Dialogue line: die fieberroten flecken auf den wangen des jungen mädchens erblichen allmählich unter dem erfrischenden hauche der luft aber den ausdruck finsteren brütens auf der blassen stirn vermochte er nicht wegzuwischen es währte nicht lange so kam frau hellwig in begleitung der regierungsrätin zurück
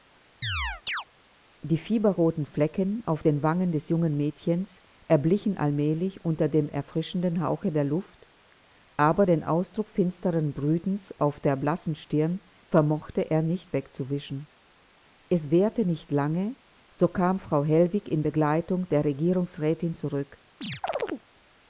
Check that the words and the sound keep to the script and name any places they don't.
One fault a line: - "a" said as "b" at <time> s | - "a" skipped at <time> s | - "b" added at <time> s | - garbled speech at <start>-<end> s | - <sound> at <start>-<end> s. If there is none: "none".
- chirp at 0.4-1.0 s
- chirp at 20.6-21.3 s